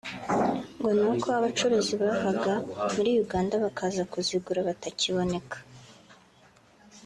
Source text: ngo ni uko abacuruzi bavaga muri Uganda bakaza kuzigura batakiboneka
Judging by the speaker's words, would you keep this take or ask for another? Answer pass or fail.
pass